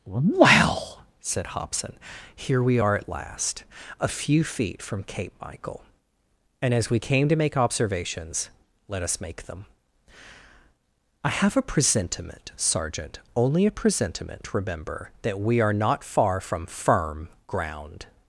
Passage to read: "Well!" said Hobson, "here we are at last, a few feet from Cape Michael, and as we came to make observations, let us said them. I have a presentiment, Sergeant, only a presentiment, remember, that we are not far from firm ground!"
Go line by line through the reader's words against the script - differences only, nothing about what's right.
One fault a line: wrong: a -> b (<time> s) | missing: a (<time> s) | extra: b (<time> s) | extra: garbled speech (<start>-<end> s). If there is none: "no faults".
wrong: said -> make (9.2 s)